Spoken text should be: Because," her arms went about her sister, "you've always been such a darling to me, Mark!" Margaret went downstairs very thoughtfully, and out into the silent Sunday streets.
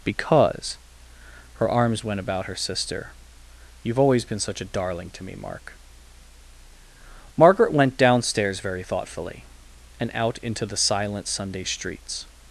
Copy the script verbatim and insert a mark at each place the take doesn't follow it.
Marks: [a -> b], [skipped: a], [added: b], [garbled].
Because," her arms went about her sister, "you've always been such a darling to me, Mark!" Margaret went downstairs very thoughtfully, and out into the silent Sunday streets.